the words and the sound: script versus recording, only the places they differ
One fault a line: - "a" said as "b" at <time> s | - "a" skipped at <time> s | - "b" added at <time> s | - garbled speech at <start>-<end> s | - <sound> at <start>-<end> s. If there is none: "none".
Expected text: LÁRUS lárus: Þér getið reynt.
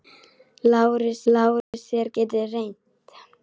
- dropout at 1.6-1.7 s